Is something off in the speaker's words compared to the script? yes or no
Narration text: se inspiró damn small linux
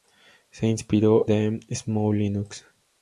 no